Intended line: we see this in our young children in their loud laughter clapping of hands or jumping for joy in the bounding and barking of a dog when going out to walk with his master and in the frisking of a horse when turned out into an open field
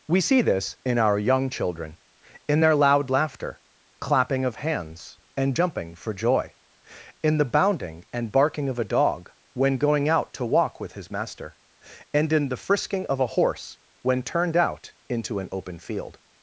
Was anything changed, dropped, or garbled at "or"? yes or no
yes